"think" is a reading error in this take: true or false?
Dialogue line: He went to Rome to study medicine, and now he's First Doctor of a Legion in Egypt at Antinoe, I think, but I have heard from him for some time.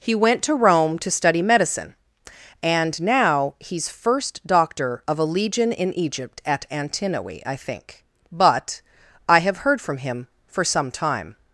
false